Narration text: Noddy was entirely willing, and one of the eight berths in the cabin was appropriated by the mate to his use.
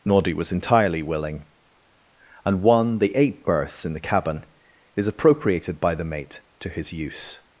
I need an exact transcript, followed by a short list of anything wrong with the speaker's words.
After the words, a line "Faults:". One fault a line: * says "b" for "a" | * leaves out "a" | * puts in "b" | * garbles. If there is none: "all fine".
Noddy was entirely willing, and one the eight berths in the cabin is appropriated by the mate to his use.
Faults:
* leaves out "of"
* says "is" for "was"